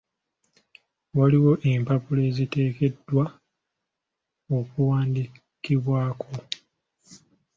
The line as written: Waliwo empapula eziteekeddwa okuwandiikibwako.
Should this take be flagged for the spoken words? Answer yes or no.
no